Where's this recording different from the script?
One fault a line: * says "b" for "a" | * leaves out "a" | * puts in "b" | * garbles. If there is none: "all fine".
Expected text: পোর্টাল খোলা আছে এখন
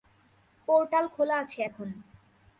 all fine